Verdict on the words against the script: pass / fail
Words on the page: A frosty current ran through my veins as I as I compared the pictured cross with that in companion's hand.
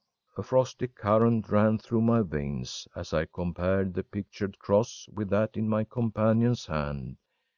fail